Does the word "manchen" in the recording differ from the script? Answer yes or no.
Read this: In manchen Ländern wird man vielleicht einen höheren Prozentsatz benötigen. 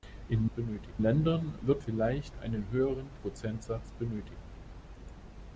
yes